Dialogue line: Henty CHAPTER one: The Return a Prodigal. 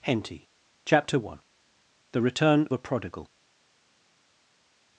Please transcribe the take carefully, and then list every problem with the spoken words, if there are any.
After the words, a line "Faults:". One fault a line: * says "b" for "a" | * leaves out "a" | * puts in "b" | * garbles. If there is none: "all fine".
Henty CHAPTER one: The Return a Prodigal.
Faults:
all fine